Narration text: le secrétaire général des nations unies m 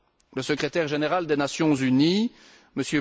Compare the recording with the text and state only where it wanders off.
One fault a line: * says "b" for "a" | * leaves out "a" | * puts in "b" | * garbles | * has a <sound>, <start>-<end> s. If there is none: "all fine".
all fine